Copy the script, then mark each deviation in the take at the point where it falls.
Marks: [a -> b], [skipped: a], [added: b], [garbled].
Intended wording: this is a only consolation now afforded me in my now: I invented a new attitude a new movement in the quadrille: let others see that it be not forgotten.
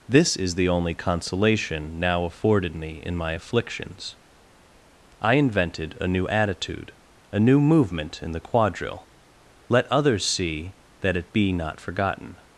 this is [a -> the] only consolation now afforded me in my [now: -> afflictions] I invented a new attitude a new movement in the quadrille: let others see that it be not forgotten.